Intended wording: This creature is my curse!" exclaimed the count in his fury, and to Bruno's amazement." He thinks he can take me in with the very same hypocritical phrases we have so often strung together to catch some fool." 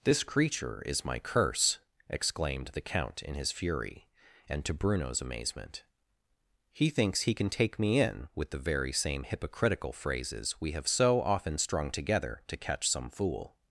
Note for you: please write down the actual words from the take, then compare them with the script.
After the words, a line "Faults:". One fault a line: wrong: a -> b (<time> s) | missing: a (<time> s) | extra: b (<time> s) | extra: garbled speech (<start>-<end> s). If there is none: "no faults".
This creature is my curse!" exclaimed the count in his fury, and to Bruno's amazement." He thinks he can take me in with the very same hypocritical phrases we have so often strung together to catch some fool."
Faults:
no faults